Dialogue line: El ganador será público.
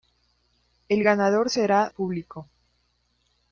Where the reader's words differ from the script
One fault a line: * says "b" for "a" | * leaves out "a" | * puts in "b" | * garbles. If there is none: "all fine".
all fine